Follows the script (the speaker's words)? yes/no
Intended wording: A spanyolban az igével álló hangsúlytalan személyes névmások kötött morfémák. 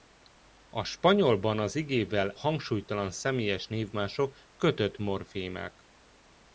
no